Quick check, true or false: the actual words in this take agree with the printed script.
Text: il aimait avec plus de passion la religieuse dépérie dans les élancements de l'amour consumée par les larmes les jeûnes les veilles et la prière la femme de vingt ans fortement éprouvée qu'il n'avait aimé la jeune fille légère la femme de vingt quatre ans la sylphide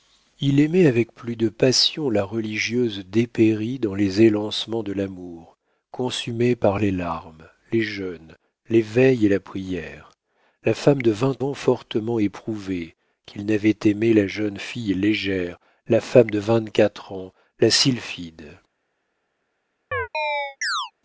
true